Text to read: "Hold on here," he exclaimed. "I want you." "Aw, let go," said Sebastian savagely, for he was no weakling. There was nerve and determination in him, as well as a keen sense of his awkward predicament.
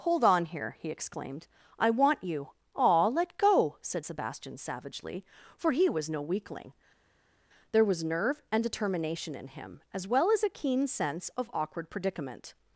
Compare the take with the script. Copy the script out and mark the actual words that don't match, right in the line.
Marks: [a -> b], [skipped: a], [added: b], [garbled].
"Hold on here," he exclaimed. "I want you." "Aw, let go," said Sebastian savagely, for he was no weakling. There was nerve and determination in him, as well as a keen sense of [skipped: his] awkward predicament.